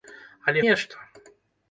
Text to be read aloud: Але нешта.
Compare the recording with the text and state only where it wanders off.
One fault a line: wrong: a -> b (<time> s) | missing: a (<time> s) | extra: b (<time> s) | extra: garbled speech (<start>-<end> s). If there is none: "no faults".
no faults